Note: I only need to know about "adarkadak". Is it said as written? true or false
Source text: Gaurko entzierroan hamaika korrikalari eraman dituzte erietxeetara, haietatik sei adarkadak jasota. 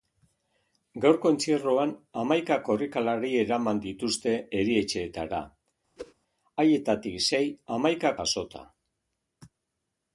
false